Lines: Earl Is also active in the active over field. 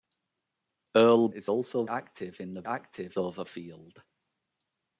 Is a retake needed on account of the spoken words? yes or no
no